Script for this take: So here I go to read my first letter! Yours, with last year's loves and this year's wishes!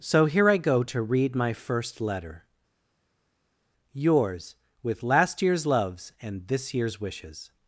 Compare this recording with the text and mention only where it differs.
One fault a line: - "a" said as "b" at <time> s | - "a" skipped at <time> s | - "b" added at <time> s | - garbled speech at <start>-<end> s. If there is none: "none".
none